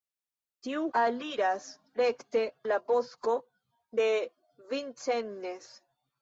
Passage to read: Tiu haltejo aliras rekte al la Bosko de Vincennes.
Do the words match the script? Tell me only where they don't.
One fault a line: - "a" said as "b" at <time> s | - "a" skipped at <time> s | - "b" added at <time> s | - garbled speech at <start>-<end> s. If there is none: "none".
- "haltejo" skipped at 0.8 s
- "al" skipped at 2.4 s